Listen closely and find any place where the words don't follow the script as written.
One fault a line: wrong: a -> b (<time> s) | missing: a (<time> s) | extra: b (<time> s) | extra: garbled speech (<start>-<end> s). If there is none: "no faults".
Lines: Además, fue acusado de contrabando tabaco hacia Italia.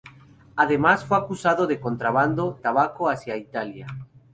no faults